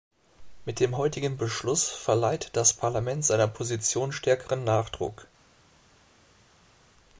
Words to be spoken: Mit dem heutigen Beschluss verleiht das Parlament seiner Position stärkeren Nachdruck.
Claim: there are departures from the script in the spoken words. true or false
false